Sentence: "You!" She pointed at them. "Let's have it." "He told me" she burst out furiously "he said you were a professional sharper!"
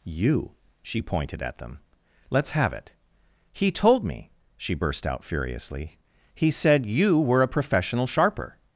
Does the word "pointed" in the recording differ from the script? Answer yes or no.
no